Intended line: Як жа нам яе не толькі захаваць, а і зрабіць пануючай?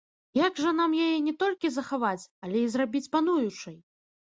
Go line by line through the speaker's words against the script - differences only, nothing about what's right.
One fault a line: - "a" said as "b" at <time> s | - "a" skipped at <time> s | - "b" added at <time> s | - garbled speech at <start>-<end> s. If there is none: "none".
- "а" said as "але" at 2.5 s